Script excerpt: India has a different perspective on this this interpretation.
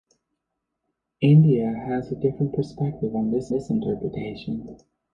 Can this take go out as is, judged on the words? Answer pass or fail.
pass